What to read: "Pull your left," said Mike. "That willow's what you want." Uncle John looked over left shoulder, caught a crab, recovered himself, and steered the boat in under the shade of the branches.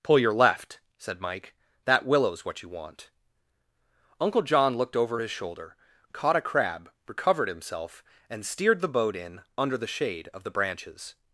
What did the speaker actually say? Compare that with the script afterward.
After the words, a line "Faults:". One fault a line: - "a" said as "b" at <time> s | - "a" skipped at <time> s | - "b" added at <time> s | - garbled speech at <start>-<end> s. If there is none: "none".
"Pull your left," said Mike. "That willow's what you want." Uncle John looked over his shoulder, caught a crab, recovered himself, and steered the boat in under the shade of the branches.
Faults:
- "left" said as "his" at 5.2 s